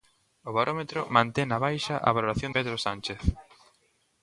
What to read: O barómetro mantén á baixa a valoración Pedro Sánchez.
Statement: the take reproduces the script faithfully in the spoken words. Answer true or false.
true